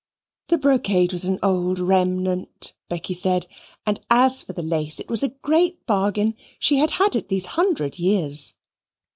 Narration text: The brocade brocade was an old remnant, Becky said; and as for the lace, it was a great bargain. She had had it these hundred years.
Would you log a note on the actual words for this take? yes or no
yes